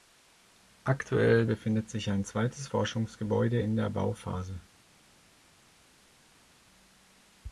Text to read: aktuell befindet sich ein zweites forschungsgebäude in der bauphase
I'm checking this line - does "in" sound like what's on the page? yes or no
yes